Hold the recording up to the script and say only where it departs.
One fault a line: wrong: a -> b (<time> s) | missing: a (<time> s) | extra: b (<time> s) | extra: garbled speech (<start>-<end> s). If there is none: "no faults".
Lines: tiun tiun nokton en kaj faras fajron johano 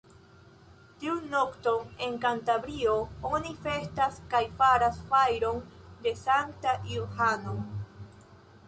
missing: tiun (1.3 s)
extra: kantabrio oni festas (2.2 s)
extra: de sankta (6.1 s)